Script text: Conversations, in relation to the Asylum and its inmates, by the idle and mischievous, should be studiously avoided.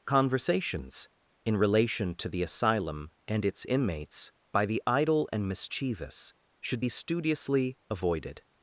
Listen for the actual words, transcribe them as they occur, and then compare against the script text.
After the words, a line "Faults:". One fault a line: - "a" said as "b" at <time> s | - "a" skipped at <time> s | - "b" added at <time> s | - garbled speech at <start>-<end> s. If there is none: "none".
Conversations, in relation to the Asylum and its inmates, by the idle and mischievous, should be studiously avoided.
Faults:
none